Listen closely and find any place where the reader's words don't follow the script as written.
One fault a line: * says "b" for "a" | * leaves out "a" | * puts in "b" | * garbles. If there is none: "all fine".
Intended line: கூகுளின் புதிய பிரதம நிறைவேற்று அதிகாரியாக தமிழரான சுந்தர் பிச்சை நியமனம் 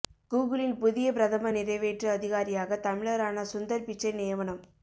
all fine